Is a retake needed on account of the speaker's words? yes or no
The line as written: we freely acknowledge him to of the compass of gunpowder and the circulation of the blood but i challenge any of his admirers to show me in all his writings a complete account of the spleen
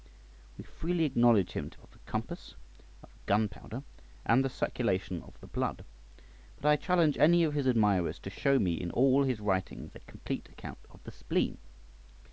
no